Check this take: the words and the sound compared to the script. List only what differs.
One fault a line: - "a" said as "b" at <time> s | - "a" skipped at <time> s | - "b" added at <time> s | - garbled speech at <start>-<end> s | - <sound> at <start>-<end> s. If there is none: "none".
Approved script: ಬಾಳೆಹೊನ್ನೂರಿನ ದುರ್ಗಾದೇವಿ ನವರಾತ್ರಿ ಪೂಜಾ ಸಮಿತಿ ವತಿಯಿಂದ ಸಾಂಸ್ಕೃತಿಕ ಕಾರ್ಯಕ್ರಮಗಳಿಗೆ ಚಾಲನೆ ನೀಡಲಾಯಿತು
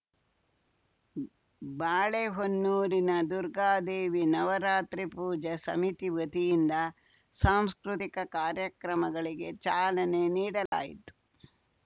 - dropout at 10.7-10.7 s